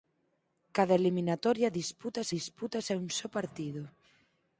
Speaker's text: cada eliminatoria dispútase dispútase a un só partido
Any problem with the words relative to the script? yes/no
no